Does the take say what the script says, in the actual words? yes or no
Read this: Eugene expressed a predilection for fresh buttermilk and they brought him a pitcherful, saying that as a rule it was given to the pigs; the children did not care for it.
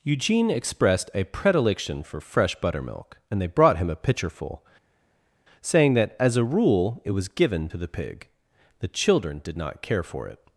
no